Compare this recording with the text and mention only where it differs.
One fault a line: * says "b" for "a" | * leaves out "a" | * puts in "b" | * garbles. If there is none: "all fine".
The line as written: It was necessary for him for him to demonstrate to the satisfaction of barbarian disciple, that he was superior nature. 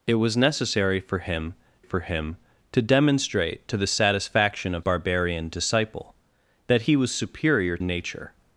all fine